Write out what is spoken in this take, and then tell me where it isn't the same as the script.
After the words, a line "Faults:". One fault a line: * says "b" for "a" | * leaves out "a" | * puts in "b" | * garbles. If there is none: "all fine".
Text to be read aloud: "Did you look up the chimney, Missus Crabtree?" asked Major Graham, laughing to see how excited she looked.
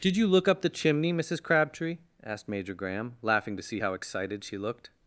"Did you look up the chimney, Missus Crabtree?" asked Major Graham, laughing to see how excited she looked.
Faults:
all fine